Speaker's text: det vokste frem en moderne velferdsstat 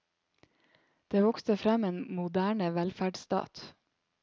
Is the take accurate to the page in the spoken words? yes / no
yes